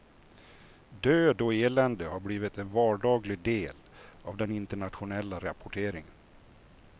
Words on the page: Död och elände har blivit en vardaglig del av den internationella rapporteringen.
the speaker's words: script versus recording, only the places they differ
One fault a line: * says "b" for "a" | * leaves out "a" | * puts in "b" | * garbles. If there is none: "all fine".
all fine